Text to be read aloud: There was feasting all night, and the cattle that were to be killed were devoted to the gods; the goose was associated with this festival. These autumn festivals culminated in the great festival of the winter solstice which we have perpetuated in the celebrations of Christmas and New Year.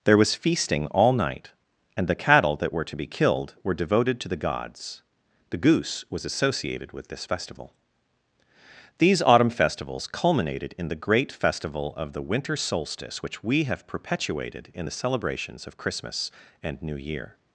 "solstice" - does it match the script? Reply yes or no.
yes